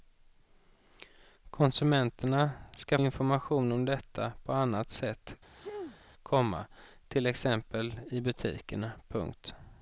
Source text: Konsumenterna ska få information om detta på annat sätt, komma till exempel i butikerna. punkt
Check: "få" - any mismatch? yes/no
yes